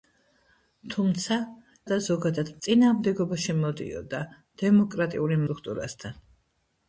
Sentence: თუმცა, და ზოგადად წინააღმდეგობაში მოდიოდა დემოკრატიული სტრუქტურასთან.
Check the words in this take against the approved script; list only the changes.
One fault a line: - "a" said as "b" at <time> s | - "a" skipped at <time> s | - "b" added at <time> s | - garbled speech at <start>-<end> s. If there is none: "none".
none